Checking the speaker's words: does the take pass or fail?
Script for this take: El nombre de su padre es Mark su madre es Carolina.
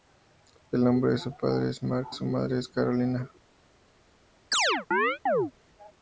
pass